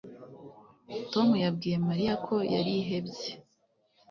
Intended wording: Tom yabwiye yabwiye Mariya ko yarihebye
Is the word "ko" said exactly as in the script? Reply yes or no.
yes